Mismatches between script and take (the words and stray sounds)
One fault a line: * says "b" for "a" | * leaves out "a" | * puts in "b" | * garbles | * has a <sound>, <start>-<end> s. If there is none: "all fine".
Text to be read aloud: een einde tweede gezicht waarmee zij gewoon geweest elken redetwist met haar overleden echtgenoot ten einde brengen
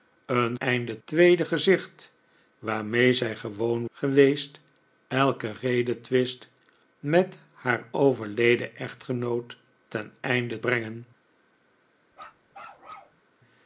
* has a bark, 12.1-13.2 s